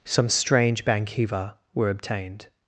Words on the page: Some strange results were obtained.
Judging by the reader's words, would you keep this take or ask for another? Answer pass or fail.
fail